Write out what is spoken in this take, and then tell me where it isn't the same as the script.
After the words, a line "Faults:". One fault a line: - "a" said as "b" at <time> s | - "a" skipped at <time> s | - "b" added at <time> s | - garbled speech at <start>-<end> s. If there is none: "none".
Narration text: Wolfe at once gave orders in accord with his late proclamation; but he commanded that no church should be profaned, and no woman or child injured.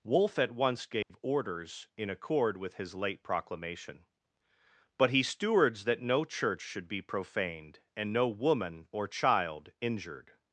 Wolfe at once gave orders in accord with his late proclamation; but he stewards that no church should be profaned, and no woman or child injured.
Faults:
- "commanded" said as "stewards" at 5.2 s